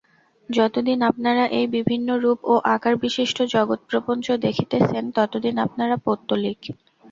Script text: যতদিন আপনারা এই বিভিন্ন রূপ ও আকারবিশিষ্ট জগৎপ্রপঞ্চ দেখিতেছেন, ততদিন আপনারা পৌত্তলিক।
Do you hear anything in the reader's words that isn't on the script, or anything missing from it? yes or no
no